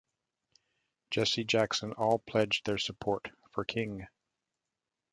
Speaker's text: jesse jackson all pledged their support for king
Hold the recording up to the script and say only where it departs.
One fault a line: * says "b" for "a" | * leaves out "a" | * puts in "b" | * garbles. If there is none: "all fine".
all fine